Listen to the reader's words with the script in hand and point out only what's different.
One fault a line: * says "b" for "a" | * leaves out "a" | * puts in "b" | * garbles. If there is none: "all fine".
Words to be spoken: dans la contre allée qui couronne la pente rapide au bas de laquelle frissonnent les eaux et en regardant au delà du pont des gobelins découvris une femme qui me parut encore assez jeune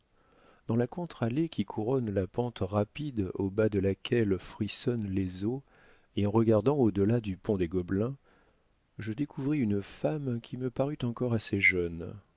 * puts in "je"